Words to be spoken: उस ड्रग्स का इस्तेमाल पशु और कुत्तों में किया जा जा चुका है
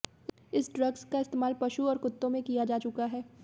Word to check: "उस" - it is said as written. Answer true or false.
false